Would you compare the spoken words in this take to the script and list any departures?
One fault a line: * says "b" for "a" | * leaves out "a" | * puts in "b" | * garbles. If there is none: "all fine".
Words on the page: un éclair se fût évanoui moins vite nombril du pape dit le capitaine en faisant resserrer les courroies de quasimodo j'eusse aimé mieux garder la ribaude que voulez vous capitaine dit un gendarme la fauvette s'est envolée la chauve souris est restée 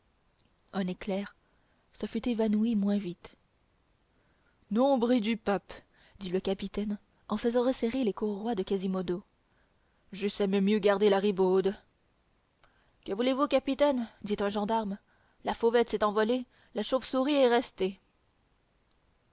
all fine